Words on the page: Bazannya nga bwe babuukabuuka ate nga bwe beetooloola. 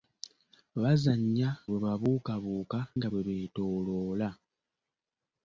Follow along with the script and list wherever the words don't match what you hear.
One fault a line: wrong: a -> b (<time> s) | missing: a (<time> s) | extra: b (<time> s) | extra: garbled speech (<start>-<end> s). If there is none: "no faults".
missing: nga (1.5 s)
missing: ate (2.8 s)